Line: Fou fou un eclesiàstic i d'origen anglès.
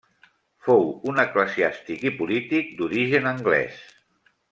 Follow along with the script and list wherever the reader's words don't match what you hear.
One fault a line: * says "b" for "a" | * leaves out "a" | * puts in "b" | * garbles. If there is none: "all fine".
* leaves out "fou"
* puts in "polític"